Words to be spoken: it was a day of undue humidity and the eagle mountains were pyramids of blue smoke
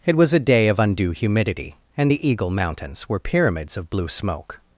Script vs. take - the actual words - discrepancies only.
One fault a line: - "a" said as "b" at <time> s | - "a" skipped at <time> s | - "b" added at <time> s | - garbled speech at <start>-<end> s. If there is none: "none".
none